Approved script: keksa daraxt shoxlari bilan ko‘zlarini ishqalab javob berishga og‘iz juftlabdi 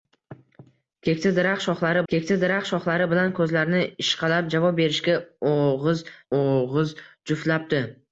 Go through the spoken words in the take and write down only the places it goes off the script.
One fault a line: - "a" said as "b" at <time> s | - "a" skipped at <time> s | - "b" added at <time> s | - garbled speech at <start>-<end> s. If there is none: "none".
- "keksa daraxt shoxlari" added at 2.1 s
- "og‘iz" added at 6.4 s